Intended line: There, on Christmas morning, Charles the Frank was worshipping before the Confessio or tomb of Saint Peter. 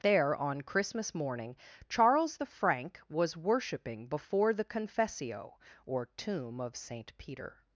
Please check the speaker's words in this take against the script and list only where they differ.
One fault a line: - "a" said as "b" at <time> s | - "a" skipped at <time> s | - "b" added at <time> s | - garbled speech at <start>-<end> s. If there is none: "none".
none